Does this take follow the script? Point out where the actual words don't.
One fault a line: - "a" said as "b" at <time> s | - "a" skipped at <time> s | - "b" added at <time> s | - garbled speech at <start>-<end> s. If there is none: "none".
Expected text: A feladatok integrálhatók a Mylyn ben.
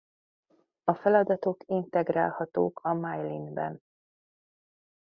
none